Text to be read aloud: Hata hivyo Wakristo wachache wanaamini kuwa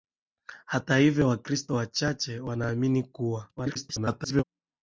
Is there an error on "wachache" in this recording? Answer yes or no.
no